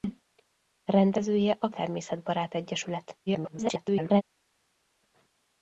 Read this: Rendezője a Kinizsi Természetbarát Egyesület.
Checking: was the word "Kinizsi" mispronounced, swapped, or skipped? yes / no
yes